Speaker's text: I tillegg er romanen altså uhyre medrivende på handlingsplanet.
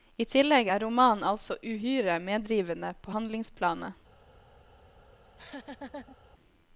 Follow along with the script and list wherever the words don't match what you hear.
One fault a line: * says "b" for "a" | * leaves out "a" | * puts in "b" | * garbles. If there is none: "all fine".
all fine